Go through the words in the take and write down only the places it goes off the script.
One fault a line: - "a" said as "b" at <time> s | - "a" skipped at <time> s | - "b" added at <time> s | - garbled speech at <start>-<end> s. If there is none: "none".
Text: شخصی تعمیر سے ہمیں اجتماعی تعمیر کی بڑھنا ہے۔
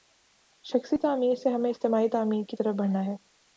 - "طرف" added at 2.5 s